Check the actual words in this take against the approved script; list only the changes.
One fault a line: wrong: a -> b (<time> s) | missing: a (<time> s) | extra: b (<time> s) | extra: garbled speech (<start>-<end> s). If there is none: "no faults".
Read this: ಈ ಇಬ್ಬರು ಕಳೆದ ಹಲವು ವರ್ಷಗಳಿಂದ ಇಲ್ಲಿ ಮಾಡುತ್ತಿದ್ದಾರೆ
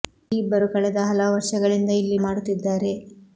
no faults